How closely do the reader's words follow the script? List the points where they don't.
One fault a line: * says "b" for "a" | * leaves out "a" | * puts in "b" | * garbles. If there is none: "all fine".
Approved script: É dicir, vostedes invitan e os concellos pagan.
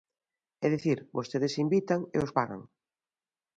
* leaves out "concellos"